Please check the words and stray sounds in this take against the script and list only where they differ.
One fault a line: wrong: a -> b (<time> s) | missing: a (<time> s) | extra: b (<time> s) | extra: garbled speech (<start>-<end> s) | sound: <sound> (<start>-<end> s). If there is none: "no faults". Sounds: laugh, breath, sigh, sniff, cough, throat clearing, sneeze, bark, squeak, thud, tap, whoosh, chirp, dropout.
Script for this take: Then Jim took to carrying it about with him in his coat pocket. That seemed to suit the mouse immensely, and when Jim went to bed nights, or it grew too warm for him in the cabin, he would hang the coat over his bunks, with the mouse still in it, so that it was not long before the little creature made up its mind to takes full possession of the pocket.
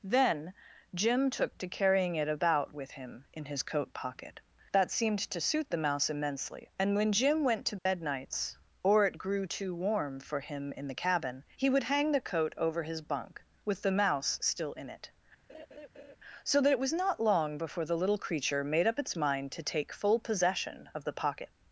sound: dropout (7.8-7.9 s)
wrong: bunks -> bunk (13.0 s)
sound: laugh (15.5-16.2 s)
wrong: takes -> take (19.6 s)